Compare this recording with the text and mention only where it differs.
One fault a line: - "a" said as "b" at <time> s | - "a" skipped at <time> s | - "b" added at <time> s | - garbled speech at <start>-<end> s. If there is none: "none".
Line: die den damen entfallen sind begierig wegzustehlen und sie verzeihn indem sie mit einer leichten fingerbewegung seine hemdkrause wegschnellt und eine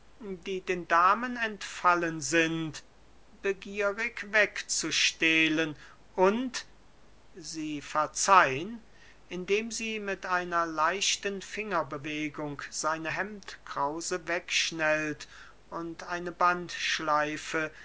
none